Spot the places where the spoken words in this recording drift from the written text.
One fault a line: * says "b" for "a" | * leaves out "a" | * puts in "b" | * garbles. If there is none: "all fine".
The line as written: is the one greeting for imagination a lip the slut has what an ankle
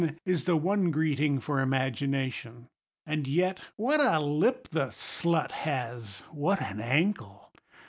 * puts in "and yet what"